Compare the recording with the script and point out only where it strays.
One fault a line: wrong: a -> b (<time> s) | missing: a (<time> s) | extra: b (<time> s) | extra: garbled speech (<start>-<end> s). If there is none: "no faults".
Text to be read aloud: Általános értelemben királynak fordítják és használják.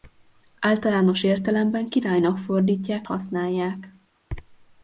missing: és (3.1 s)